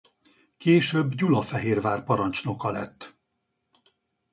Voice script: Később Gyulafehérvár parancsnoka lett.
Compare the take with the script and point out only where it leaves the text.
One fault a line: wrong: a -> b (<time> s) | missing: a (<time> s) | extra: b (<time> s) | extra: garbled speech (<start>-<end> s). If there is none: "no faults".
no faults